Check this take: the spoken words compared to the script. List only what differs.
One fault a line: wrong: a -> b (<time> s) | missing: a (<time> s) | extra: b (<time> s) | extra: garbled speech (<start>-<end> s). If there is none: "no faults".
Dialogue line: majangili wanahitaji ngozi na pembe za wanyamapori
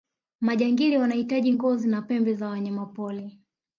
no faults